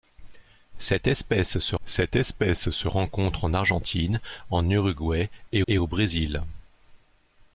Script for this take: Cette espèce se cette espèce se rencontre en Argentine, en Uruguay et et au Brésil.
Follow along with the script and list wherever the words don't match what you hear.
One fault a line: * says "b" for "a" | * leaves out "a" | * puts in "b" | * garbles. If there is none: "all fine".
all fine